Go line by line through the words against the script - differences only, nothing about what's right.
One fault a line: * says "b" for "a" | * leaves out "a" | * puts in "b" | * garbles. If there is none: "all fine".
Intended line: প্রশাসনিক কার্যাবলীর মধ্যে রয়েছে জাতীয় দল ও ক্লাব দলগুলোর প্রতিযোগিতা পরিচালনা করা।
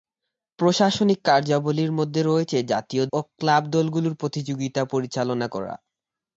* leaves out "দল"